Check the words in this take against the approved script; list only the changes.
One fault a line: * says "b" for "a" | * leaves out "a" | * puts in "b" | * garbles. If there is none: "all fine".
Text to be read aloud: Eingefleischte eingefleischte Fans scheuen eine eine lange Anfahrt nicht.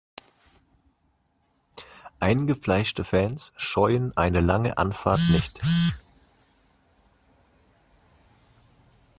* leaves out "eingefleischte"
* leaves out "eine"